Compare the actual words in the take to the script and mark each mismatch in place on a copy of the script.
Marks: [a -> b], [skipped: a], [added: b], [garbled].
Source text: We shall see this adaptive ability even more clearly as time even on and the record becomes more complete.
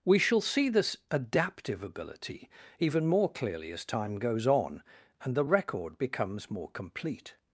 We shall see this adaptive ability even more clearly as time [even -> goes] on and the record becomes more complete.